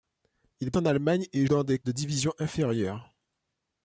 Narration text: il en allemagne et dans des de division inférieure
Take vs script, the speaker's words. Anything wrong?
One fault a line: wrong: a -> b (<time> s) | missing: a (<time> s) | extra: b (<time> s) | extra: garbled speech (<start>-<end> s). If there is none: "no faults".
no faults